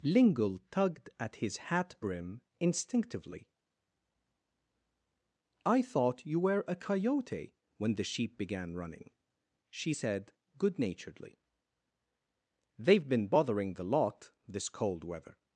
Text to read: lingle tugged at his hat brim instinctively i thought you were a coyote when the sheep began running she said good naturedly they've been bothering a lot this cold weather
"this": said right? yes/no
yes